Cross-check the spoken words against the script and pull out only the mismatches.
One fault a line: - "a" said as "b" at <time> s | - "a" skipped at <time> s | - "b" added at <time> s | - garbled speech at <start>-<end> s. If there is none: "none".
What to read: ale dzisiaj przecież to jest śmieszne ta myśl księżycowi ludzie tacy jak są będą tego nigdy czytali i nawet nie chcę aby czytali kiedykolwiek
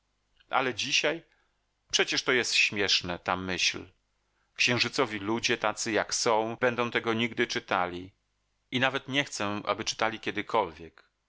none